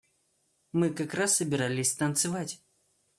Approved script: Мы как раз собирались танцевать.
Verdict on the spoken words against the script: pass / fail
pass